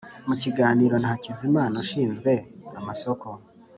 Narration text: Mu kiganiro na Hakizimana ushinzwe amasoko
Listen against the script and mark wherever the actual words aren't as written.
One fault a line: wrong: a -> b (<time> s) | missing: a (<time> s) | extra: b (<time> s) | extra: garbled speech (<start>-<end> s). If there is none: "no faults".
no faults